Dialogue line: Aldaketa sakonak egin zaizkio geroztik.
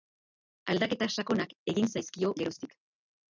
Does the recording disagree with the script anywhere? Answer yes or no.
no